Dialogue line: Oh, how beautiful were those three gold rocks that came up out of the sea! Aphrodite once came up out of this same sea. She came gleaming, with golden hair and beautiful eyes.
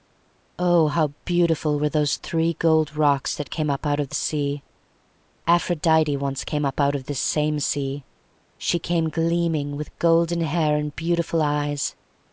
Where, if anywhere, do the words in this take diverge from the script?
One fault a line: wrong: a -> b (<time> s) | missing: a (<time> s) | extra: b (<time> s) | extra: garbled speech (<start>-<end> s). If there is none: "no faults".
no faults